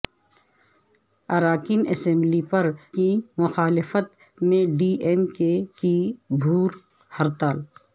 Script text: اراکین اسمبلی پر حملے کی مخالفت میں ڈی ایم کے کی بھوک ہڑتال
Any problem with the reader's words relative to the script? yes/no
yes